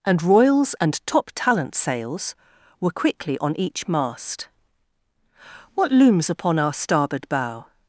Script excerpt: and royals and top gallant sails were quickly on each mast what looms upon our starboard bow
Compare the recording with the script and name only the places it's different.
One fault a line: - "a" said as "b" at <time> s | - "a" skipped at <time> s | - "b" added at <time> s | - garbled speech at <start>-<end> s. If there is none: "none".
- "gallant" said as "talent" at 1.4 s